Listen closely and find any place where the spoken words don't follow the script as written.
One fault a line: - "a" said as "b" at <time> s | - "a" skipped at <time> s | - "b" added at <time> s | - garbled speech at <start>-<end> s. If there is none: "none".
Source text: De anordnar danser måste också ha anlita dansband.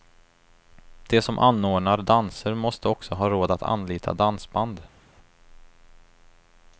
- "som" added at 1.2 s
- "råd att" added at 3.3 s